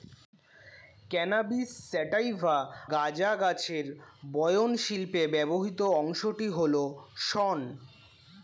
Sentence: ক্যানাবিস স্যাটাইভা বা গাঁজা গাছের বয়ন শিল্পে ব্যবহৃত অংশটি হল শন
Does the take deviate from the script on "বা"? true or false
true